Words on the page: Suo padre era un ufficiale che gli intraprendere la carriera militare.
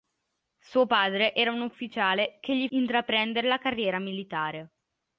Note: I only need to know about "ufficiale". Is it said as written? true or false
true